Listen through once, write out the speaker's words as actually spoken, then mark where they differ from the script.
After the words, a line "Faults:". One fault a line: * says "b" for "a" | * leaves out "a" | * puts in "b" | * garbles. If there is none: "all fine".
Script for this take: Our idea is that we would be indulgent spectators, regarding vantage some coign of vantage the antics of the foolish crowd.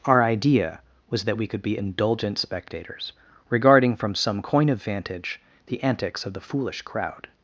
Our idea was that we could be indulgent spectators, regarding from some coign of vantage the antics of the foolish crowd.
Faults:
* says "was" for "is"
* says "could" for "would"
* says "from" for "vantage"